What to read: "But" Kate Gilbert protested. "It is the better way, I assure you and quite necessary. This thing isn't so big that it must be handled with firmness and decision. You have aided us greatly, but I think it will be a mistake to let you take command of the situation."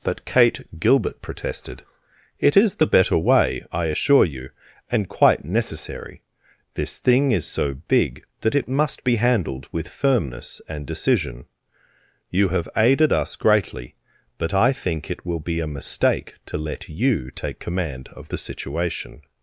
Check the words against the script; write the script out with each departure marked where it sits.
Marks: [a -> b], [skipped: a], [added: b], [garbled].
"But" Kate Gilbert protested. "It is the better way, I assure you and quite necessary. This thing [isn't -> is] so big that it must be handled with firmness and decision. You have aided us greatly, but I think it will be a mistake to let you take command of the situation."